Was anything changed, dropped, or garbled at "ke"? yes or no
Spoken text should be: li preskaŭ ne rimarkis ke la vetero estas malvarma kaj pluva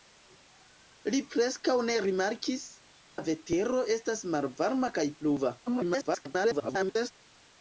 yes